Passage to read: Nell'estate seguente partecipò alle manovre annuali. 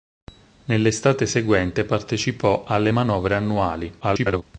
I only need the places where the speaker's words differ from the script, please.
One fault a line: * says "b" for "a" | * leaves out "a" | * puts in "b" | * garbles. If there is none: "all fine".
* garbles